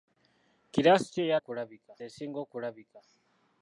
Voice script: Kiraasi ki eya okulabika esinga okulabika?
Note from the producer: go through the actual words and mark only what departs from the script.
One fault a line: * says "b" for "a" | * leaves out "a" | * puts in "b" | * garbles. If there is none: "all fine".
all fine